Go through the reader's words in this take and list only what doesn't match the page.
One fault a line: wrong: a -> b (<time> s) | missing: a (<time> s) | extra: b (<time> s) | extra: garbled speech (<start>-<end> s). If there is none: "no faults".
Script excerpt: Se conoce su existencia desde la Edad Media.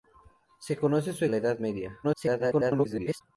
missing: existencia desde (1.2 s)
extra: garbled speech (2.0-3.2 s)